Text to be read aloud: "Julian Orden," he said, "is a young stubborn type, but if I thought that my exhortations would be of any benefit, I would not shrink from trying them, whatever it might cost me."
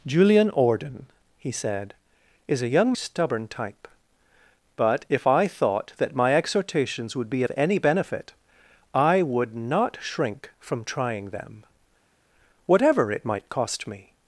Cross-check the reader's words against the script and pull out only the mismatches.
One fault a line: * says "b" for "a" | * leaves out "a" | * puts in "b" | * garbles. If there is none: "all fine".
all fine